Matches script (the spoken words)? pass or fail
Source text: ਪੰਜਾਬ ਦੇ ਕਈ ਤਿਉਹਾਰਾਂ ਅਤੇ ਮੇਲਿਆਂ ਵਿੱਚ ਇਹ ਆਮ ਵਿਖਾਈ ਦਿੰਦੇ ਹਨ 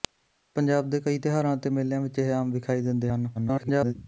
fail